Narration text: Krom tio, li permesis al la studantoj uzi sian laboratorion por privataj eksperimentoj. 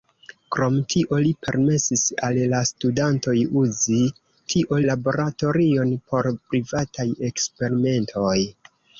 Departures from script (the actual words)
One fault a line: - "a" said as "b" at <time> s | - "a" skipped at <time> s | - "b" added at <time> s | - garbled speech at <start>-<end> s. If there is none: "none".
- "sian" said as "tio" at 4.5 s